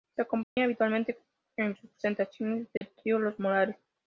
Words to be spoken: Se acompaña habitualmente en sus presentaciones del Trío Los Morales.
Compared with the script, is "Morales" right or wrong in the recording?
right